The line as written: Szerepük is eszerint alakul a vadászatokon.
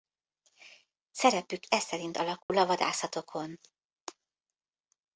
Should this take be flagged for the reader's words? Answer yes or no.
yes